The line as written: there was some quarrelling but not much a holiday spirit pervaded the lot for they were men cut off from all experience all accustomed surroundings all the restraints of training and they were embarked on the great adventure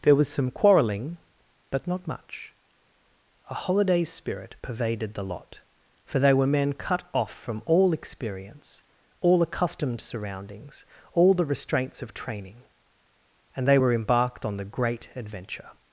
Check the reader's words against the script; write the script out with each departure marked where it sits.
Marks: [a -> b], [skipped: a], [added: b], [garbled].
there was some quarrelling but not much a holiday spirit pervaded the lot for they were men cut off from all experience all accustomed surroundings all the restraints of training and they were embarked on the great adventure